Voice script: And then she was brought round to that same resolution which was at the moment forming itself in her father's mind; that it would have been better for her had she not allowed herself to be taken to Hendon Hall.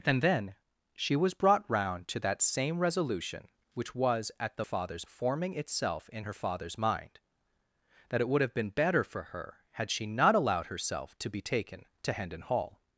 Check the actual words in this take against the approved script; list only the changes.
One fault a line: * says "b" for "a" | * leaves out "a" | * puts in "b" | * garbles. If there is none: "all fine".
* says "father's" for "moment"